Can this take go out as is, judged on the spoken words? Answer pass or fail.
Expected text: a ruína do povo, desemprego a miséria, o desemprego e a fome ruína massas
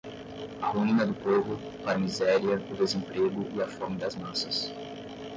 fail